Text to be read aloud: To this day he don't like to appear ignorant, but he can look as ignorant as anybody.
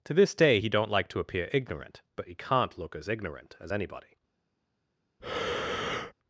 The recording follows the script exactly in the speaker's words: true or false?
false